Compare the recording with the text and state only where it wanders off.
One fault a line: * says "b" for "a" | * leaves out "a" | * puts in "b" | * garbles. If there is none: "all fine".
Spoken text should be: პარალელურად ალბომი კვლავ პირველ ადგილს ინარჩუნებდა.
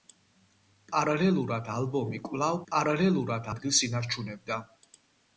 * says "პარალელურად" for "პირველ"